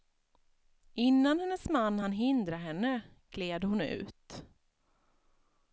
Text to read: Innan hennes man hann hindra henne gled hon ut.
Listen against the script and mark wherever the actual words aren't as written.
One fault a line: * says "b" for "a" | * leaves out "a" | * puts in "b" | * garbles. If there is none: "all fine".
all fine